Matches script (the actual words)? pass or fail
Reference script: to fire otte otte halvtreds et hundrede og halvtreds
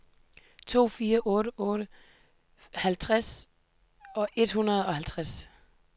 pass